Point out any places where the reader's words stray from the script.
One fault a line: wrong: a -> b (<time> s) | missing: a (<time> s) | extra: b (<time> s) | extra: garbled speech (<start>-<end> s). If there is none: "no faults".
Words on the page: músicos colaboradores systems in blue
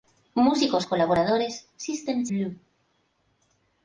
missing: in (2.3 s)